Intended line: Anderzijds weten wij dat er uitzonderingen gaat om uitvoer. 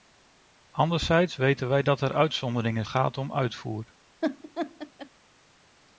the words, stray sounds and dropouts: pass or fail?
fail